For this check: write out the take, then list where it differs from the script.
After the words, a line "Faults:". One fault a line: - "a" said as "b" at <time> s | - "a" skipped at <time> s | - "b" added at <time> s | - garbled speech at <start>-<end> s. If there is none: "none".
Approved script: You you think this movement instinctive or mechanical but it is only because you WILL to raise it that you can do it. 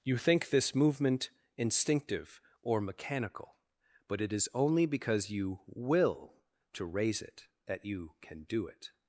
You think this movement instinctive or mechanical but it is only because you WILL to raise it that you can do it.
Faults:
- "you" skipped at 0.2 s